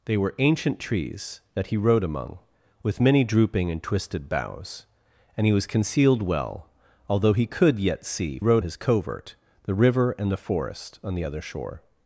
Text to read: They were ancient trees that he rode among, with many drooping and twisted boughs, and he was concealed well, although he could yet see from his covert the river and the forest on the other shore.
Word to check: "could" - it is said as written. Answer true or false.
true